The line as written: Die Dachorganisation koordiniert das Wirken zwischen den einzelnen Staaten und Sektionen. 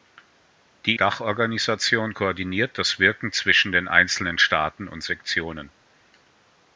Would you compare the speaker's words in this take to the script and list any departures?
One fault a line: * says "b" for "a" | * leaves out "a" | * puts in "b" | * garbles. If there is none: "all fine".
all fine